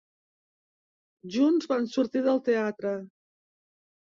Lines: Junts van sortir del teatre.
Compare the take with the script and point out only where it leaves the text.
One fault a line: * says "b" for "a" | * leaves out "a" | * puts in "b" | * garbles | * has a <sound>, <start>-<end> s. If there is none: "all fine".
all fine